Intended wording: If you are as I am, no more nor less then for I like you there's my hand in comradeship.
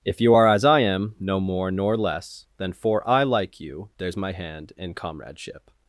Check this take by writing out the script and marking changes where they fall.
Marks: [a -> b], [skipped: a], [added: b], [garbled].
If you are as I am, no more nor less then for I like you there's my hand in comradeship.